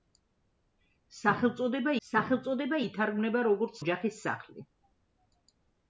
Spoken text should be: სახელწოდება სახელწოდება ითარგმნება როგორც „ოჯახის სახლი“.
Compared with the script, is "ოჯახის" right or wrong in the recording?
right